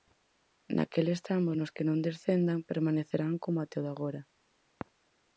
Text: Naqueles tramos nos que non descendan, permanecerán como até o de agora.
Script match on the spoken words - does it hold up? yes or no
yes